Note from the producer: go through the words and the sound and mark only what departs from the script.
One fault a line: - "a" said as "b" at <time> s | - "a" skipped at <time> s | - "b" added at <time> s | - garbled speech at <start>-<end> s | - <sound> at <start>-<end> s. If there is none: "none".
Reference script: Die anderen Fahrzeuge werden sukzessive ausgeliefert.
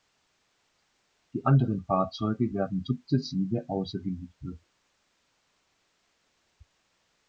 none